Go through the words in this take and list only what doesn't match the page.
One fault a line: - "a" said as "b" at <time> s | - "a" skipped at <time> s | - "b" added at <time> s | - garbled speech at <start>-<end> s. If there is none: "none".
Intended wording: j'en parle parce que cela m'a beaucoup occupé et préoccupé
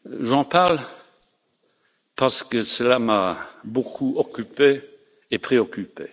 none